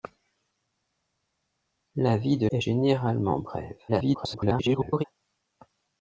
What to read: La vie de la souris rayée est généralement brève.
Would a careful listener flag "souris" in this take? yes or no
yes